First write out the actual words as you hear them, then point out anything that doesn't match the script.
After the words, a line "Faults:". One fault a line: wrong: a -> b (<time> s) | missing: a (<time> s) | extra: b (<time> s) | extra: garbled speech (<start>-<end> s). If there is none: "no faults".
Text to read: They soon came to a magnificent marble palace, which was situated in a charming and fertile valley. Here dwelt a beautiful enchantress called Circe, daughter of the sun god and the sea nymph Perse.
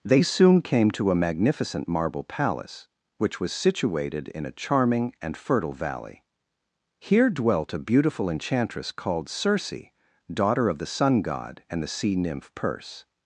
They soon came to a magnificent marble palace, which was situated in a charming and fertile valley. Here dwelt a beautiful enchantress called Circe, daughter of the sun god and the sea nymph Perse.
Faults:
no faults